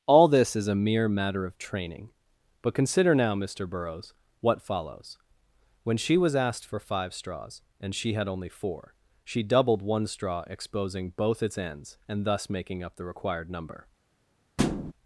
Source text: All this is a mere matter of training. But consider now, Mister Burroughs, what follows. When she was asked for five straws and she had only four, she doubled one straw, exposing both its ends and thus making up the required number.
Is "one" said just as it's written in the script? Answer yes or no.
yes